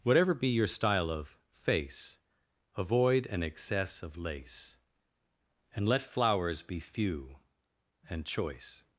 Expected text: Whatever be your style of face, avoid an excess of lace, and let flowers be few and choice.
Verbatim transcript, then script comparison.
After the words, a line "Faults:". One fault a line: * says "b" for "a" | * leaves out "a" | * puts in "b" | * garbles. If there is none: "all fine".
Whatever be your style of face, avoid an excess of lace, and let flowers be few and choice.
Faults:
all fine